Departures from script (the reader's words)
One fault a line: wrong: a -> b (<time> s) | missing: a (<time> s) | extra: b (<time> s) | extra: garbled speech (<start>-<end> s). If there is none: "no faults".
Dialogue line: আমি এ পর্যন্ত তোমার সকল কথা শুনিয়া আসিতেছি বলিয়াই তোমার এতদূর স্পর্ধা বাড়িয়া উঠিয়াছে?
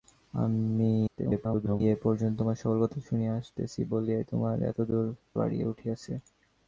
extra: garbled speech (1.1-1.8 s)
missing: স্পর্ধা (5.1 s)